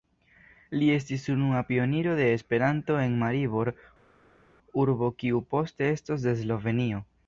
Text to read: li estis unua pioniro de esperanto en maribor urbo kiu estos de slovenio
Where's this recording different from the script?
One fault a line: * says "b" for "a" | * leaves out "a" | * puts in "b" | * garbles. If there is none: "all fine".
* puts in "poste"